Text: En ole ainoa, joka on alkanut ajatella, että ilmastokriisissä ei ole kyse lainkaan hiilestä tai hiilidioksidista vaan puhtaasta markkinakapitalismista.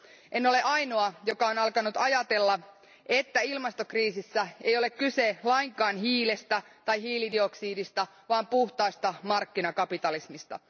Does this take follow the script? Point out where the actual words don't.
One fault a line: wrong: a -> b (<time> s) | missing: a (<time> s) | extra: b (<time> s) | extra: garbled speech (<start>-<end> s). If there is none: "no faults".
no faults